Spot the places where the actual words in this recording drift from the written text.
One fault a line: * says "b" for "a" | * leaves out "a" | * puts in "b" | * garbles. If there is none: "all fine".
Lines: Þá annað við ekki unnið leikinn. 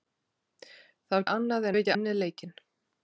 all fine